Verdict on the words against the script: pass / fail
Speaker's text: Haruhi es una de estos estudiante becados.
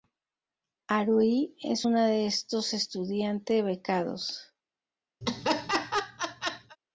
pass